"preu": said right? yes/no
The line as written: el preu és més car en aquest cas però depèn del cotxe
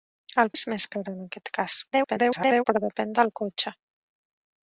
no